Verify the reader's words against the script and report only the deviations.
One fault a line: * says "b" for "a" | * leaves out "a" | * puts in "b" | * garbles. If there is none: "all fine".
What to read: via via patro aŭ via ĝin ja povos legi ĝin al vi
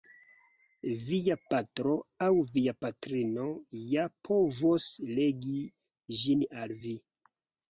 * leaves out "via"
* says "patrino" for "ĝin"